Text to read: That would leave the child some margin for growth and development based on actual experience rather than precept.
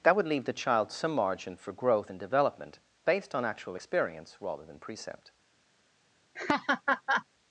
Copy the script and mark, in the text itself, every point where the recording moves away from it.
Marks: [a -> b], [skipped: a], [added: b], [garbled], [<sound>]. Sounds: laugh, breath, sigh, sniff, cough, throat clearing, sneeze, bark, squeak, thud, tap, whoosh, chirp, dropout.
That would leave the child some margin for growth and development based on actual experience rather than precept. [laugh]